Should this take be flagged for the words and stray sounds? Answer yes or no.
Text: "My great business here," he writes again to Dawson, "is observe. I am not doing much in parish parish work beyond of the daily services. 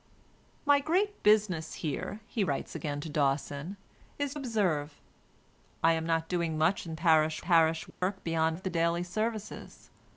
yes